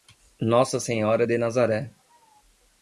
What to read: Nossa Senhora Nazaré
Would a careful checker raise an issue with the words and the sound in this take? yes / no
yes